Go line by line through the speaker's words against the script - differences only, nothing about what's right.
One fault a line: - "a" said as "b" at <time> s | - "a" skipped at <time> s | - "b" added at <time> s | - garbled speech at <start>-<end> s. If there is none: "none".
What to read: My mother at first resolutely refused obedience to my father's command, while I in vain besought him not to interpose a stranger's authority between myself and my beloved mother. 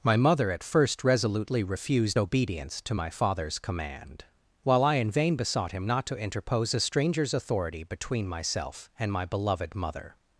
none